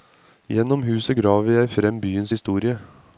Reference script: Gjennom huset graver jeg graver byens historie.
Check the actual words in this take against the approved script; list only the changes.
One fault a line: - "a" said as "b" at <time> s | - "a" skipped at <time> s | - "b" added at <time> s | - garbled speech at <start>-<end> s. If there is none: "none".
- "graver" said as "frem" at 1.7 s